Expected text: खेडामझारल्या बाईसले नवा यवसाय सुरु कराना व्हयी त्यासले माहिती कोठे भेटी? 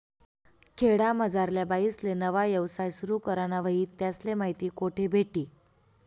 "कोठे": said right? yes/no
yes